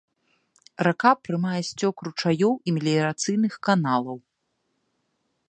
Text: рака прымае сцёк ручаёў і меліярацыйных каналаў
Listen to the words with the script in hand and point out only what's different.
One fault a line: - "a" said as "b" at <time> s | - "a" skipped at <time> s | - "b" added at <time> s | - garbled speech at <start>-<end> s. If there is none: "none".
none